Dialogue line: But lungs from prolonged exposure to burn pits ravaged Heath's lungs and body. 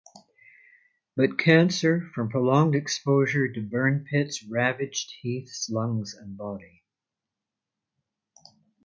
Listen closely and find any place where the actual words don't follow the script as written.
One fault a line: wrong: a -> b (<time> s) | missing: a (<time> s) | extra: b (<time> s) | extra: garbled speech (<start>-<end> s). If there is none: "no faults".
wrong: lungs -> cancer (1.4 s)